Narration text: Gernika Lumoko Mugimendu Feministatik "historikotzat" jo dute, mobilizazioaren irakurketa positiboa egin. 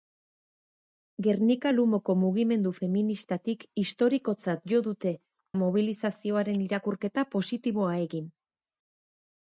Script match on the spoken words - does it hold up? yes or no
yes